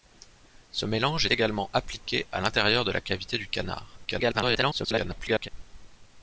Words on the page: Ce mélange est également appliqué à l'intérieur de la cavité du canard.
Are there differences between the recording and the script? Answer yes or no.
yes